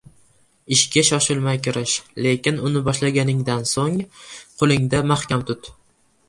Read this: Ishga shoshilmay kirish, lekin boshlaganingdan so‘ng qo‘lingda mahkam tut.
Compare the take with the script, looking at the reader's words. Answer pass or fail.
fail